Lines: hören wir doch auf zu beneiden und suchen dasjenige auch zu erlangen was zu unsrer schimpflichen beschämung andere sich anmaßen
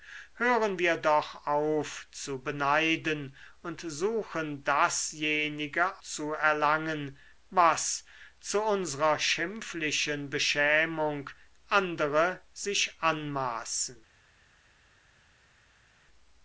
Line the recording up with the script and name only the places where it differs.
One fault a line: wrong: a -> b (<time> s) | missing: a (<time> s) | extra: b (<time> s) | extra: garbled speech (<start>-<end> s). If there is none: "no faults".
missing: auch (6.0 s)